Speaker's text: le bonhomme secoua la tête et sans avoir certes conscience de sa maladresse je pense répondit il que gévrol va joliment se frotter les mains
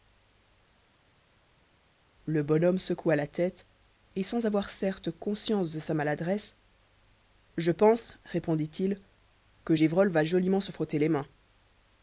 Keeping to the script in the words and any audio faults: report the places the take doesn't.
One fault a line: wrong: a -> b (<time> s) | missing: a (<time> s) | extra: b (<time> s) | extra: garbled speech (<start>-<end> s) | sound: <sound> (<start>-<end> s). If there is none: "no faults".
no faults